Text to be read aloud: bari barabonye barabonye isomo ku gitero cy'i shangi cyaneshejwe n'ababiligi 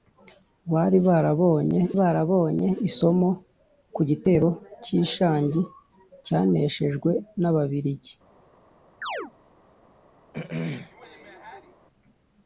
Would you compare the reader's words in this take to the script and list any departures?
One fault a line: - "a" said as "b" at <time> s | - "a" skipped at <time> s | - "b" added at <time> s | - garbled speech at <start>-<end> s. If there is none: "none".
none